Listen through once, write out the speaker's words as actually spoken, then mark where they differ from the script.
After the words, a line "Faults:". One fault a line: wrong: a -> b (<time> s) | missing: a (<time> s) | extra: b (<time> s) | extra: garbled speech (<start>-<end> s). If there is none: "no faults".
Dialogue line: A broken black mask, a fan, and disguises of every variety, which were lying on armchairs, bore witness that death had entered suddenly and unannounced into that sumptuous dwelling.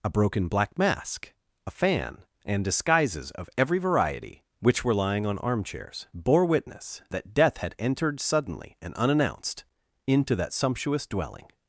A broken black mask, a fan, and disguises of every variety, which were lying on armchairs, bore witness that death had entered suddenly and unannounced into that sumptuous dwelling.
Faults:
no faults